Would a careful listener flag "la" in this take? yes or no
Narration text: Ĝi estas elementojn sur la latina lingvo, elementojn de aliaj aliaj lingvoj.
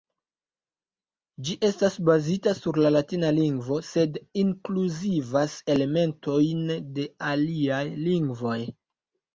no